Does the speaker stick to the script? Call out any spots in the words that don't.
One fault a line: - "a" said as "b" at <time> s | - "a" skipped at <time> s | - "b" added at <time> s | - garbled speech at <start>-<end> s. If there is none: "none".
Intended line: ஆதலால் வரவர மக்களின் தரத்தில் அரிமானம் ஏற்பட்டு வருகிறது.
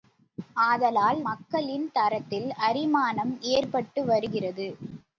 - "வரவர" skipped at 1.2 s